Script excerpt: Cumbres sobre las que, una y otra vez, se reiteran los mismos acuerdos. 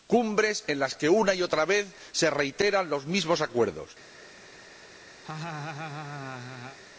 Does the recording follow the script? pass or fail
fail